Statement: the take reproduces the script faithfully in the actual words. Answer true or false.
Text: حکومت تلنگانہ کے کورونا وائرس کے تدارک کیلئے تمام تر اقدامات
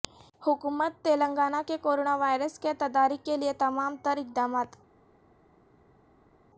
true